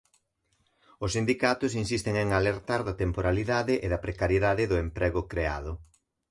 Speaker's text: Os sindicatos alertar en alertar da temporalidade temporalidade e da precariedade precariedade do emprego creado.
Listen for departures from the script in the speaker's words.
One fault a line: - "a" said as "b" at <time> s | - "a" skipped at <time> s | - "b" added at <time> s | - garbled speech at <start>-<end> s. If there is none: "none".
- "alertar" said as "insisten" at 1.8 s
- "temporalidade" skipped at 3.7 s
- "precariedade" skipped at 4.6 s